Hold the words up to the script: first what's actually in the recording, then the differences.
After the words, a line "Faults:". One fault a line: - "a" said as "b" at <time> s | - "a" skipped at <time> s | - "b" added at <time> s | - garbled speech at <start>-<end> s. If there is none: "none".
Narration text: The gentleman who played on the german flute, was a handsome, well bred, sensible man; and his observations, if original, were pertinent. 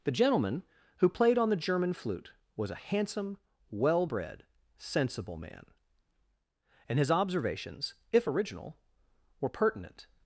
The gentleman who played on the german flute, was a handsome, well bred, sensible man; and his observations, if original, were pertinent.
Faults:
none